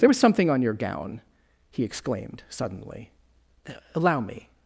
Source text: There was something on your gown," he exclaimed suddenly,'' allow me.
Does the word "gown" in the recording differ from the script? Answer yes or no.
no